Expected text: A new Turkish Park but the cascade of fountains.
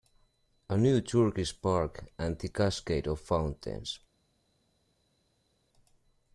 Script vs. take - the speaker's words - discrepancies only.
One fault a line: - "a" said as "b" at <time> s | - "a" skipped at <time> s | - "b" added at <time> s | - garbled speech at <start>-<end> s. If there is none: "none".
- "but" said as "and" at 2.2 s